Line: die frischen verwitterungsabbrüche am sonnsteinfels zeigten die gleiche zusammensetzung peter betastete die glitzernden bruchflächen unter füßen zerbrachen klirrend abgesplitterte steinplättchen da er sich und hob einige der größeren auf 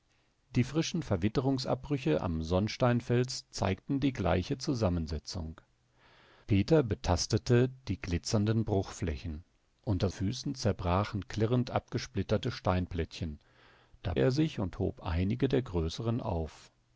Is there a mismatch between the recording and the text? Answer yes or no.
no